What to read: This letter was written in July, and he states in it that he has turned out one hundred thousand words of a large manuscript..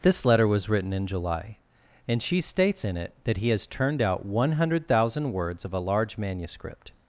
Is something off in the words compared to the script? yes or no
yes